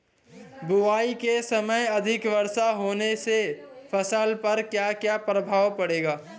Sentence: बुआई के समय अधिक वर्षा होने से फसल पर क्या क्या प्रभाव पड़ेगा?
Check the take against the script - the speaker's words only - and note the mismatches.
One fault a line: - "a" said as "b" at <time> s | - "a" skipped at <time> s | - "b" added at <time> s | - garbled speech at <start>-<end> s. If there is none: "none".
none